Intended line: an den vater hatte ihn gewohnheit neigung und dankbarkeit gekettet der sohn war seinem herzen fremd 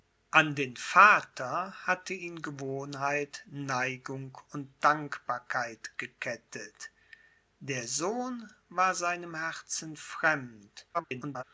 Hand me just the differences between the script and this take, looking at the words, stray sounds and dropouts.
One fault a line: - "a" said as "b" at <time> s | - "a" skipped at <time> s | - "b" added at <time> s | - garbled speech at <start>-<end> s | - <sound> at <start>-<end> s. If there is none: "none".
- garbled speech at 10.9-11.4 s